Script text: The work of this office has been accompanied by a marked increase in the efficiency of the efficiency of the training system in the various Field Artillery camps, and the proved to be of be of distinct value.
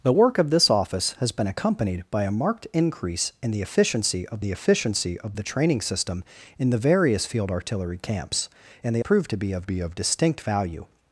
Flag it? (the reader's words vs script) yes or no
no